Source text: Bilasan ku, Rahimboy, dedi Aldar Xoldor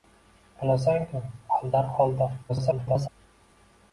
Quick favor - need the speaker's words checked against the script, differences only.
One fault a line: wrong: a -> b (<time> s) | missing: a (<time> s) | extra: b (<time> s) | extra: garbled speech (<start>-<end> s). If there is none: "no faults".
missing: Rahimboy dedi (1.2 s)
extra: garbled speech (2.5-3.1 s)